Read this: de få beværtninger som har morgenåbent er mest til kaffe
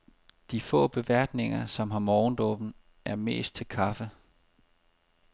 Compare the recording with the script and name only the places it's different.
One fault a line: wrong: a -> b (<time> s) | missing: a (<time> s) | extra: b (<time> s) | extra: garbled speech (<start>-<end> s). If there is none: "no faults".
no faults